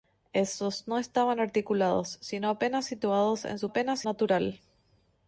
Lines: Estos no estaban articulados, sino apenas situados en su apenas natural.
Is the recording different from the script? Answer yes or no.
no